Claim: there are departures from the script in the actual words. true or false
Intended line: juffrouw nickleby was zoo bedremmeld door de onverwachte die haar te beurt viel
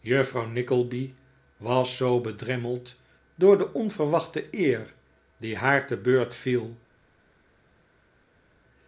true